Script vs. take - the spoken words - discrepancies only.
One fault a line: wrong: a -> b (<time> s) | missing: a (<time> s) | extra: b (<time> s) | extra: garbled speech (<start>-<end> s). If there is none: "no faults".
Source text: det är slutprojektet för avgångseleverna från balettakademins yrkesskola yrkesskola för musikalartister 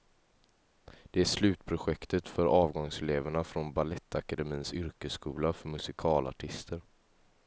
missing: yrkesskola (5.5 s)